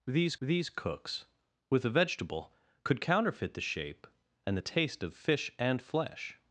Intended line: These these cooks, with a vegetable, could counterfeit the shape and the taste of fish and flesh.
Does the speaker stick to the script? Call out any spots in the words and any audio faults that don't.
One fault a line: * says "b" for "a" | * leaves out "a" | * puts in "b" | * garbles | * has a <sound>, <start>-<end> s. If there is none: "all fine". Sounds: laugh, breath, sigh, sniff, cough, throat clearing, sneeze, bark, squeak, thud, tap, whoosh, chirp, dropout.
all fine